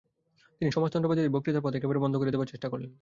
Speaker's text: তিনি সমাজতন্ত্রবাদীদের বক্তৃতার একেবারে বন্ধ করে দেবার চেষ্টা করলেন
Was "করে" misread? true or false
false